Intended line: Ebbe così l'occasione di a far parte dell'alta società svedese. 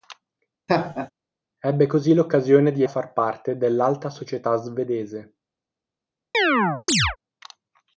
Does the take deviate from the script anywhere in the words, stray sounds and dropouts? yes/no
yes